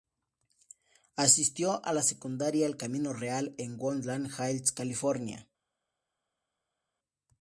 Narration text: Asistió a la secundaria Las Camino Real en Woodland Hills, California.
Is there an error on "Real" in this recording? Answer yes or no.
no